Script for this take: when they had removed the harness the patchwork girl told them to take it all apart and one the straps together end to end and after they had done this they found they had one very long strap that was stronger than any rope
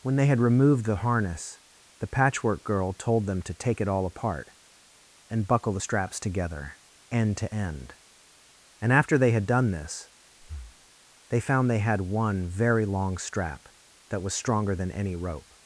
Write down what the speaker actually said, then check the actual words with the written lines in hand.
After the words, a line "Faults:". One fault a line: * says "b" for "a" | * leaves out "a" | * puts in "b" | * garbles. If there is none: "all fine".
when they had removed the harness the patchwork girl told them to take it all apart and buckle the straps together end to end and after they had done this they found they had one very long strap that was stronger than any rope
Faults:
* says "buckle" for "one"